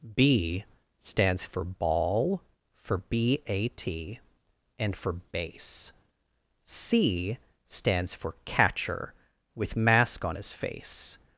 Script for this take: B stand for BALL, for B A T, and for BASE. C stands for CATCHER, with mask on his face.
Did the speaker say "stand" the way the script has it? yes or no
no